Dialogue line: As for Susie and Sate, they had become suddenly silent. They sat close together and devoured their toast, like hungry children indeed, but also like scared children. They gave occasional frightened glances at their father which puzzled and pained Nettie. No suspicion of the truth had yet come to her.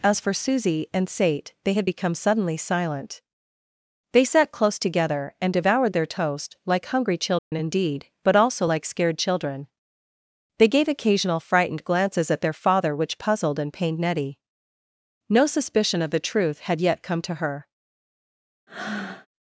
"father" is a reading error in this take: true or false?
false